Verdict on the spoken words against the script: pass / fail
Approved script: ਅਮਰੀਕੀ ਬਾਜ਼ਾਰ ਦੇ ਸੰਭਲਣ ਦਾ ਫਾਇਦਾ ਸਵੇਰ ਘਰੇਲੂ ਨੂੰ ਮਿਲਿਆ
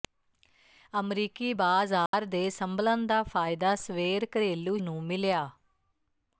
pass